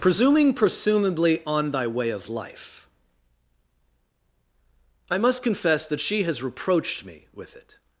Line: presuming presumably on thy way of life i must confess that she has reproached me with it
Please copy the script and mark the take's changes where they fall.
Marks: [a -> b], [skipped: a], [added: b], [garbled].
presuming presumably on thy way of life i must confess that she has reproached me with it